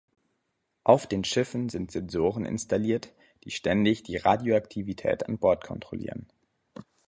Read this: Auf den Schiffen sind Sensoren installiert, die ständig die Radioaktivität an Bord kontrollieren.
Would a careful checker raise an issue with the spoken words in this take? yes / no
no